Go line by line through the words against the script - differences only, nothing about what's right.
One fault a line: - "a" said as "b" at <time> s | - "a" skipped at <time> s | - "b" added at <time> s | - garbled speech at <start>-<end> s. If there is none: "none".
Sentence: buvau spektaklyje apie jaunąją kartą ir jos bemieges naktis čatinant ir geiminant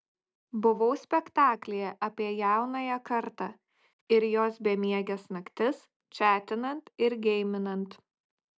none